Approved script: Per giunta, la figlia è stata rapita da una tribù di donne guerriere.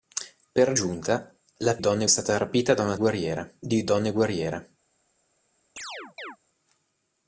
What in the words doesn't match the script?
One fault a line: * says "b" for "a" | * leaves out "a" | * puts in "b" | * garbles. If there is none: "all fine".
* says "donne" for "figlia"
* says "guerriere" for "tribù"